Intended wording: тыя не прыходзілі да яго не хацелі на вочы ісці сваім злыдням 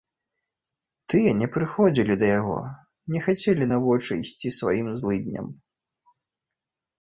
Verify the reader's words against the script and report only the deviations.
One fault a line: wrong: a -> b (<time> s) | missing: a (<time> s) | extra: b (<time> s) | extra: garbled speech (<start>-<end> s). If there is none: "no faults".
no faults